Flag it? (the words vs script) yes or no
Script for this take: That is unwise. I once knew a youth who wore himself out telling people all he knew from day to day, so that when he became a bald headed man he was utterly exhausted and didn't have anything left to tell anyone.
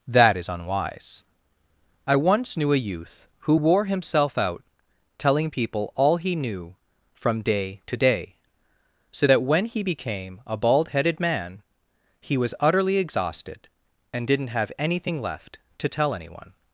no